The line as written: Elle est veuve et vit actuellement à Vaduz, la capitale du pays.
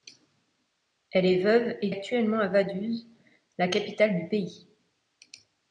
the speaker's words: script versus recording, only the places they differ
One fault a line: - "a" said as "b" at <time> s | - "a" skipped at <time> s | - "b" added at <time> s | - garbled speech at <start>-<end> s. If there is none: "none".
- "vit" skipped at 1.9 s